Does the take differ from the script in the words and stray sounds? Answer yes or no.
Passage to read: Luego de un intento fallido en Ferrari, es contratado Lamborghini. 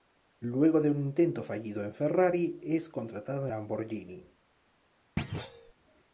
yes